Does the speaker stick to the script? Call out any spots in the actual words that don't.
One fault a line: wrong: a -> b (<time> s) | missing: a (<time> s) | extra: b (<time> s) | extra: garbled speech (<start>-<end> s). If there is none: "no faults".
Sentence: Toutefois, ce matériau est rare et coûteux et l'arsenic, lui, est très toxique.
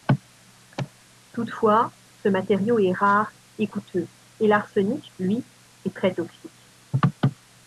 no faults